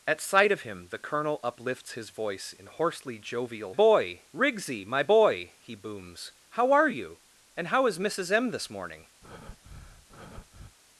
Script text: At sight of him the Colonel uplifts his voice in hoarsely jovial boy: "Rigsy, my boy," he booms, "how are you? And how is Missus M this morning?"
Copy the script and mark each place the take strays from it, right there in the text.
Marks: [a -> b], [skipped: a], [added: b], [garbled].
At sight of him the Colonel uplifts his voice in hoarsely jovial boy: "Rigsy, my boy," he booms, "how are you? And how is Missus M this morning?"